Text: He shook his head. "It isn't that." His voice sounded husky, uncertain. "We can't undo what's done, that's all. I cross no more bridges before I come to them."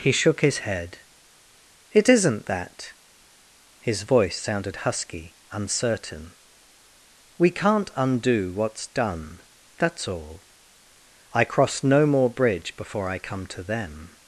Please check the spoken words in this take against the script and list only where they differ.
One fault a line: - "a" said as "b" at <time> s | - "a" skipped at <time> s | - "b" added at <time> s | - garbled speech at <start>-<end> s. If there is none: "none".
- "bridges" said as "bridge" at 12.3 s